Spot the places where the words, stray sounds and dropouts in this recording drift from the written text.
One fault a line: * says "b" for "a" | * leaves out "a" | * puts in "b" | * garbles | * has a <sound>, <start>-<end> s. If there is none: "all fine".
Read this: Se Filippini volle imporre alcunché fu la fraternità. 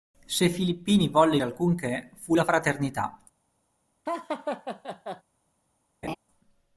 * leaves out "imporre"
* has a laugh, 4.1-5.2 s
* has a laugh, 6.0-6.2 s